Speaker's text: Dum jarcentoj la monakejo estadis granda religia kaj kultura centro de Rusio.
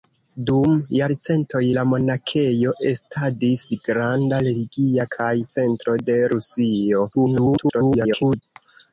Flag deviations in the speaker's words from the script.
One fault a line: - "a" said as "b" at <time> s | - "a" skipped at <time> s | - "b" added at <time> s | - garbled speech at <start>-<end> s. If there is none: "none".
- "kultura" skipped at 5.3 s
- garbled speech at 7.1-8.4 s